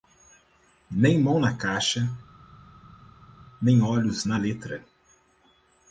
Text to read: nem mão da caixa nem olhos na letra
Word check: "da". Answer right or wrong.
wrong